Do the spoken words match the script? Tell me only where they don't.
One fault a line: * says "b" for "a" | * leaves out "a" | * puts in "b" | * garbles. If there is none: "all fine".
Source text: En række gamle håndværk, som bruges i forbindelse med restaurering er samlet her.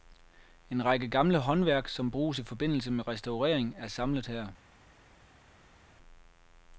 all fine